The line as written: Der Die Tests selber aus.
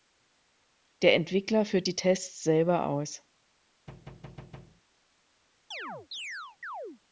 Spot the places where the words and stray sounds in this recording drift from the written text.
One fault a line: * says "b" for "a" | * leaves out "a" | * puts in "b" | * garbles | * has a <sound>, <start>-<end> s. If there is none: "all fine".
* puts in "Entwickler führt"
* has a thud, 3.9-4.8 s
* has a chirp, 5.7-7.0 s